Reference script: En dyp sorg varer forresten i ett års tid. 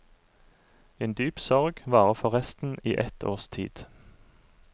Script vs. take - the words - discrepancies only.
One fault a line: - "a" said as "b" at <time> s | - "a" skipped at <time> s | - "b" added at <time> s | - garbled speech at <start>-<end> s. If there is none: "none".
none